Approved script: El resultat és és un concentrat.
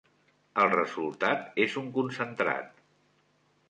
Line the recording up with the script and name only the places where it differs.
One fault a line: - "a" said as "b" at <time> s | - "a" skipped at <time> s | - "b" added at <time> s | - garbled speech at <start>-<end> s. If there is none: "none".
- "és" skipped at 1.8 s